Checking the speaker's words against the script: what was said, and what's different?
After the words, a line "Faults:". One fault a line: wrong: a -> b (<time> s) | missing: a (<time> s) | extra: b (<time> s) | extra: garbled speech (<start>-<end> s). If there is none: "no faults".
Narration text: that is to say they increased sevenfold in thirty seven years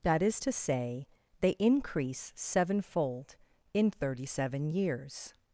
that is to say they increase sevenfold in thirty seven years
Faults:
wrong: increased -> increase (1.6 s)